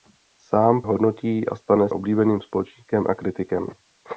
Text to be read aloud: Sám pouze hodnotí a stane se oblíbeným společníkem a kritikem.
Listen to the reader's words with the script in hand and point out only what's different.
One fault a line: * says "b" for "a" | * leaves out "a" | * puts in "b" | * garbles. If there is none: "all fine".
* leaves out "pouze"
* leaves out "se"